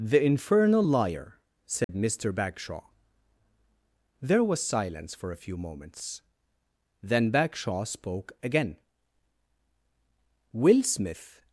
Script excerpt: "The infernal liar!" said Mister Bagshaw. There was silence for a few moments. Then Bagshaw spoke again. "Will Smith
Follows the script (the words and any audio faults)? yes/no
no